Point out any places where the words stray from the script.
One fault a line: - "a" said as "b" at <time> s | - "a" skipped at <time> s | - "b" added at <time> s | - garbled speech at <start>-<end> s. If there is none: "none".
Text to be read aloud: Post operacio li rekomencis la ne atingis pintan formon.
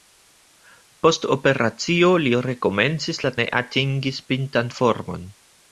none